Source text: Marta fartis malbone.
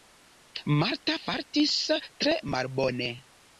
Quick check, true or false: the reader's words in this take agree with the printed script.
false